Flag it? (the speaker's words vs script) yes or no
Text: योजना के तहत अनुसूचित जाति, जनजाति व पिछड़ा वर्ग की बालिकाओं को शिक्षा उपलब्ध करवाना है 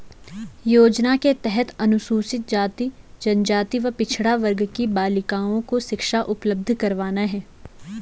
no